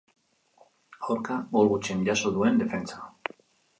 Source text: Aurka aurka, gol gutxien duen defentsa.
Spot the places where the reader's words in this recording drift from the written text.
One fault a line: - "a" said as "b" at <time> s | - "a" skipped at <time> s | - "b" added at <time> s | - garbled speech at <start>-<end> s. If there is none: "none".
- "aurka" skipped at 1.4 s
- "jaso" added at 2.1 s